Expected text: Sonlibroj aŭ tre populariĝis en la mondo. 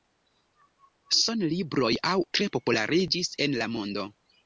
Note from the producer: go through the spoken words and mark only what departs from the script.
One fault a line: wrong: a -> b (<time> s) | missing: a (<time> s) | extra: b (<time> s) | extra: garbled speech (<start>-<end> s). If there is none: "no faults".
no faults